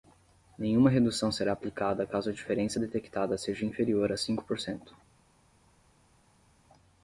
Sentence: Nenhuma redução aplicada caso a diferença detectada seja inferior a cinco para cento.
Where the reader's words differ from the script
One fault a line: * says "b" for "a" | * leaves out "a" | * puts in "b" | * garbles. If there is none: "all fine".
* puts in "será"
* says "por" for "para"